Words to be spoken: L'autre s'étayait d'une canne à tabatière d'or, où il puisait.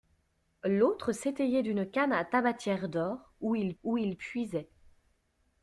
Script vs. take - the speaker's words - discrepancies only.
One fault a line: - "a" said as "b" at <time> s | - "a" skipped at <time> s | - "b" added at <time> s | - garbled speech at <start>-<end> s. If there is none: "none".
- "où il" added at 3.8 s